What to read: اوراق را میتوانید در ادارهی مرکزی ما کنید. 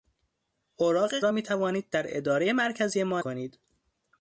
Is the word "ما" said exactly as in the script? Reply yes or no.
yes